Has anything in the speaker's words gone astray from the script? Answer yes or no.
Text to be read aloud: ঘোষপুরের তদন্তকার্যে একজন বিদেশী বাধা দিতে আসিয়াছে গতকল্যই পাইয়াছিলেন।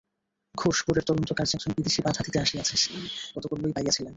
no